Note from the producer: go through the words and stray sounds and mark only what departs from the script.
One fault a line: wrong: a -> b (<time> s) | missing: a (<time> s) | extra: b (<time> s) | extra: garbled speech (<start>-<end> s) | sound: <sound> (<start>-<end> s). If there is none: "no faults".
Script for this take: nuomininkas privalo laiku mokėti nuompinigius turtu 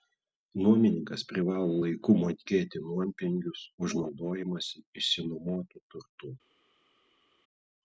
extra: už naudojimąsi išsinuomotu (3.9 s)